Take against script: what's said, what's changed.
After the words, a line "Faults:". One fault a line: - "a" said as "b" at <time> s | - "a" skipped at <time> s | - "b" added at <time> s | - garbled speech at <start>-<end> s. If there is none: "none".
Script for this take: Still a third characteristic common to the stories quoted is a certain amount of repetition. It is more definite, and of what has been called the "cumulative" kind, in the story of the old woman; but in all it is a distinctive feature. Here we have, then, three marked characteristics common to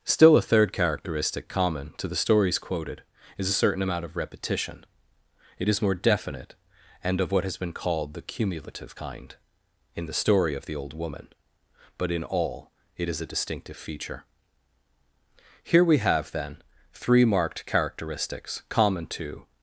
Still a third characteristic common to the stories quoted is a certain amount of repetition. It is more definite, and of what has been called the "cumulative" kind, in the story of the old woman; but in all it is a distinctive feature. Here we have, then, three marked characteristics common to
Faults:
none